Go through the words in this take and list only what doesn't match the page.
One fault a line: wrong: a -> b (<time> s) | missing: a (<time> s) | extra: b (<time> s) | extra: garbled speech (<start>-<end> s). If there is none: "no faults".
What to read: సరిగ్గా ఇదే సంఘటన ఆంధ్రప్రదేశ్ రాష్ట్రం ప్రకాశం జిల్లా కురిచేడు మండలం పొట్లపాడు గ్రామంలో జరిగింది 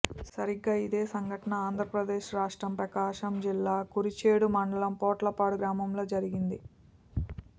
no faults